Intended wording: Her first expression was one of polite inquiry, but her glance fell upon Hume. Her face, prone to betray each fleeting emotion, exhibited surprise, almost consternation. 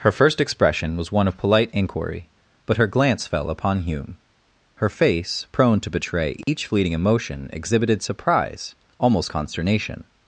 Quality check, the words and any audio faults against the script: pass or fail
fail